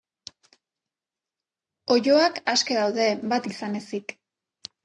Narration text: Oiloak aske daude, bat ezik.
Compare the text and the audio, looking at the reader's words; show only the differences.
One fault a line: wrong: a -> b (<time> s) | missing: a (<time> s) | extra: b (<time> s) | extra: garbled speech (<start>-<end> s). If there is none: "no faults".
extra: izan (3.5 s)